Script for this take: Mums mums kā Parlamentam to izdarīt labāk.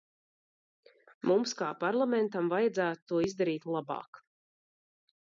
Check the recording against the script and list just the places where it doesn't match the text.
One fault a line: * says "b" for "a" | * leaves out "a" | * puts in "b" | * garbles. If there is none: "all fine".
* leaves out "mums"
* puts in "vajadzētu"